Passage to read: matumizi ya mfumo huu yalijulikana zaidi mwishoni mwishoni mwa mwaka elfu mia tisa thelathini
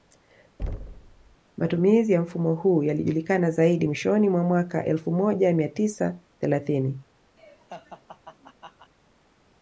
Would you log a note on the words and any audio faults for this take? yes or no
yes